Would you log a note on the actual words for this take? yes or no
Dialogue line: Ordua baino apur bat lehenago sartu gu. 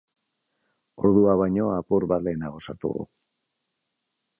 no